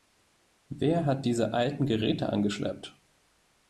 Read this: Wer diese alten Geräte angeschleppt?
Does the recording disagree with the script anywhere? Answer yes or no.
yes